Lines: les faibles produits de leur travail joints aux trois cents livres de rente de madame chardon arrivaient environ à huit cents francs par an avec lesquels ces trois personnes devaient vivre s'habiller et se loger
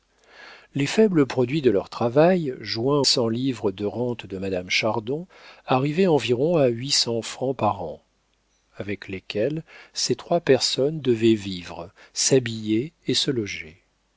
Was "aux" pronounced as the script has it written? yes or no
no